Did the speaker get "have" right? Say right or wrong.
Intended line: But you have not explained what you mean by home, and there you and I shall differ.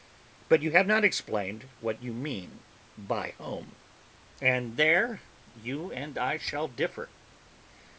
right